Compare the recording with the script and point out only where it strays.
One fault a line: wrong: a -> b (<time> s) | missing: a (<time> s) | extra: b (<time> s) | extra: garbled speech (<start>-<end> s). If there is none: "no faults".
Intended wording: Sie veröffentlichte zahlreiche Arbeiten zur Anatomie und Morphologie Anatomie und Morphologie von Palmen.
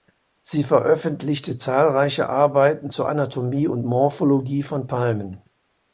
missing: Anatomie und Morphologie (4.6 s)